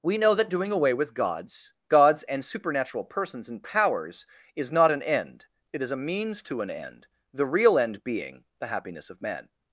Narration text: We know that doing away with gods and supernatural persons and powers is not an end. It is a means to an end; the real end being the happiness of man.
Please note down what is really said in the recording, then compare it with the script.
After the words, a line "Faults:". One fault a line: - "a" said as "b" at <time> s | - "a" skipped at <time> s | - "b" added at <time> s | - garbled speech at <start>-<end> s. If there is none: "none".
We know that doing away with gods gods and supernatural persons and powers is not an end. It is a means to an end; the real end being the happiness of man.
Faults:
- "gods" added at 1.9 s